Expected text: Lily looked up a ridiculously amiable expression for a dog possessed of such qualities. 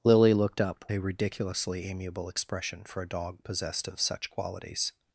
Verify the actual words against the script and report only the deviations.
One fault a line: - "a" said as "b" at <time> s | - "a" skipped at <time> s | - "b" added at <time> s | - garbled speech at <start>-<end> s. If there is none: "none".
none